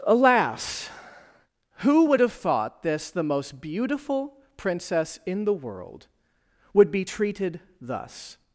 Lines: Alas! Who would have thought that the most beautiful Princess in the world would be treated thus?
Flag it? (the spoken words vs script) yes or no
yes